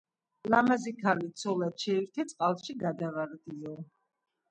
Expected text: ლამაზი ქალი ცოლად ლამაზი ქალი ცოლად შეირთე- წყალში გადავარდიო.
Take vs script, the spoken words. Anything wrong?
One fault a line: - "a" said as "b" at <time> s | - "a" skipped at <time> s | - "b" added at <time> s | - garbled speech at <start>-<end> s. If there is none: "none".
- "ლამაზი ქალი ცოლად" skipped at 1.8 s